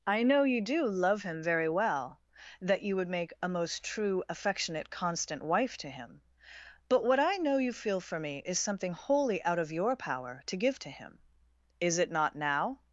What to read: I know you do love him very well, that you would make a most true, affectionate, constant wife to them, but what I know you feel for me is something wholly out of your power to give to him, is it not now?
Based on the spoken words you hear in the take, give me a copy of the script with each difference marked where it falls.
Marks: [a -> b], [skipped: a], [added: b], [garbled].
I know you do love him very well, that you would make a most true, affectionate, constant wife to [them, -> him] but what I know you feel for me is something wholly out of your power to give to him, is it not now?